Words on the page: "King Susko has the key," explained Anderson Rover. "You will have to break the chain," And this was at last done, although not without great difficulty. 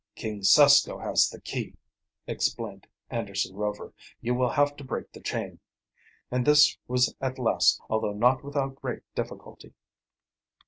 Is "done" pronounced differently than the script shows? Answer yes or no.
yes